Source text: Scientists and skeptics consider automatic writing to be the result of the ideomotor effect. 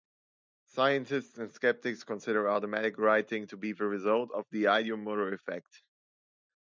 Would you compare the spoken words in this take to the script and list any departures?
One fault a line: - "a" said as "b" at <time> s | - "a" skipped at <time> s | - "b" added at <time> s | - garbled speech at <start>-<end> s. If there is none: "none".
none